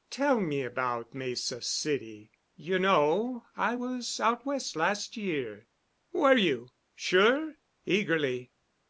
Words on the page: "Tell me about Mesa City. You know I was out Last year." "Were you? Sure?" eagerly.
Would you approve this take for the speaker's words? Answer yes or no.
no